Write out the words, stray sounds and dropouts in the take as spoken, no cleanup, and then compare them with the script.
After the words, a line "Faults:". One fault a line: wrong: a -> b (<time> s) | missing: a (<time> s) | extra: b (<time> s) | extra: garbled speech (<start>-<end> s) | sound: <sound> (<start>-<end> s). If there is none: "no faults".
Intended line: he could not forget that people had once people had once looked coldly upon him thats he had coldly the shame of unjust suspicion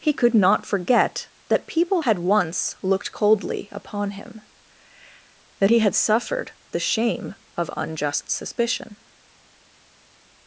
he could not forget that people had once looked coldly upon him that he had suffered the shame of unjust suspicion
Faults:
missing: people had once (2.8 s)
wrong: thats -> that (5.6 s)
wrong: coldly -> suffered (5.9 s)